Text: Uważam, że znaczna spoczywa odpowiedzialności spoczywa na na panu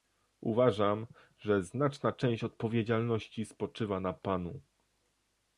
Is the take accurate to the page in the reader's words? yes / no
no